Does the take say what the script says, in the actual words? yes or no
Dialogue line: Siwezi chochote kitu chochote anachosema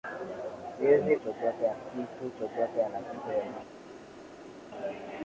yes